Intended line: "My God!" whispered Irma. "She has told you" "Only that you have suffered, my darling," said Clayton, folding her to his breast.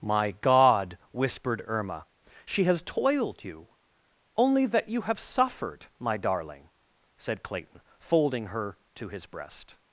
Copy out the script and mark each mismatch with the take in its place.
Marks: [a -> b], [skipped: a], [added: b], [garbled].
"My God!" whispered Irma. "She has [told -> toiled] you" "Only that you have suffered, my darling," said Clayton, folding her to his breast.